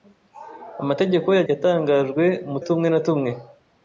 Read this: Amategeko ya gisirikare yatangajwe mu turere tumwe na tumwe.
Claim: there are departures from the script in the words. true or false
true